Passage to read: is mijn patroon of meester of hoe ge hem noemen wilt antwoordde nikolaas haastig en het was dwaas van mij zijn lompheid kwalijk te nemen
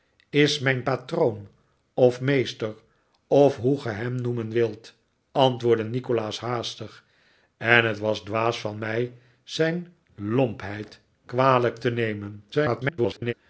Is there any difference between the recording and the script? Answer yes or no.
yes